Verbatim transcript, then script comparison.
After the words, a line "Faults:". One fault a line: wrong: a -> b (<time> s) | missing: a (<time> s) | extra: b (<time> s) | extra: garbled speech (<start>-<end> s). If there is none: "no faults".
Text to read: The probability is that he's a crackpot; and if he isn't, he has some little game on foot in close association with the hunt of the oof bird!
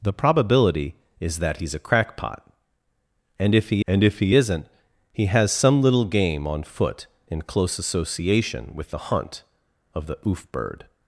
The probability is that he's a crackpot; and if he and if he isn't, he has some little game on foot in close association with the hunt of the oof bird!
Faults:
extra: and if he (3.8 s)